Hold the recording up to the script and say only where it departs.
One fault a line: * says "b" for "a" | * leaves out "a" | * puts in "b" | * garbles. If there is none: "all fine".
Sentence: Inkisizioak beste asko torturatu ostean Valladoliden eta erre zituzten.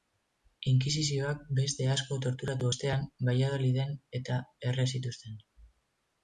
all fine